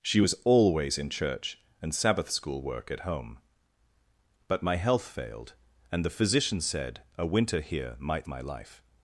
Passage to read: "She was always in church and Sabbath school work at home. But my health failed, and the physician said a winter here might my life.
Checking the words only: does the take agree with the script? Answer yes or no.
yes